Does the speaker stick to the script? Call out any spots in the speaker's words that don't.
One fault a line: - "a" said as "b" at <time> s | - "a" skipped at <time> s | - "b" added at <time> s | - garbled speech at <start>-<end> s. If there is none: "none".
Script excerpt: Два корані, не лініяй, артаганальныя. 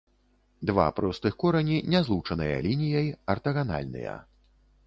- "простых" added at 1.0 s
- "злучаныя" added at 2.1 s